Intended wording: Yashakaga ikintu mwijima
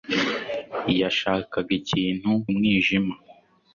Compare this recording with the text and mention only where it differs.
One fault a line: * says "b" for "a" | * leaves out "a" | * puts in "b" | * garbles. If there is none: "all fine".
all fine